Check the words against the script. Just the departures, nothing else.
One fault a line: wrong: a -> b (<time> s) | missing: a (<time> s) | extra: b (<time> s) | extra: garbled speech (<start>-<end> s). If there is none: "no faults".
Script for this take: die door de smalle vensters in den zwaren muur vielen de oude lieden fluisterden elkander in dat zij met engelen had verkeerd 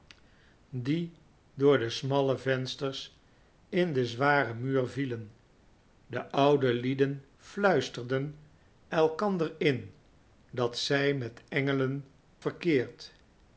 missing: had (12.1 s)